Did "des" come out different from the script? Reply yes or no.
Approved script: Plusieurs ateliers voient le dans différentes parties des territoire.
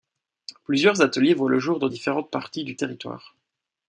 yes